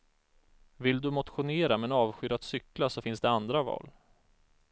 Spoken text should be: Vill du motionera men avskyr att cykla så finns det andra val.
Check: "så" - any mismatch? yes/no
no